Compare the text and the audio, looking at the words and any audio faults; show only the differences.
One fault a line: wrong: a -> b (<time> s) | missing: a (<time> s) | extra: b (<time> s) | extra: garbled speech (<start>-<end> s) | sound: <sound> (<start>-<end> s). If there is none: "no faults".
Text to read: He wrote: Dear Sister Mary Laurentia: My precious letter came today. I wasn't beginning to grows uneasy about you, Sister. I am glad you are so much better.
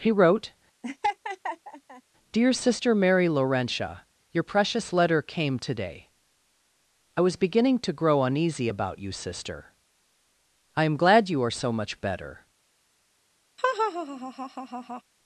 sound: laugh (0.8-2.0 s)
wrong: My -> Your (4.3 s)
wrong: wasn't -> was (7.2 s)
wrong: grows -> grow (7.9 s)
sound: laugh (13.6-15.0 s)